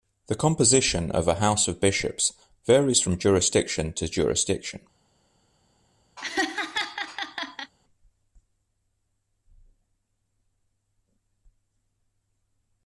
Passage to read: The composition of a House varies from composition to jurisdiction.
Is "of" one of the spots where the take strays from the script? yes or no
no